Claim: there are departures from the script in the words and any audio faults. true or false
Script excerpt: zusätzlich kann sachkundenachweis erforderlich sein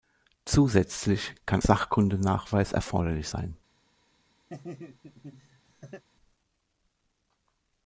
true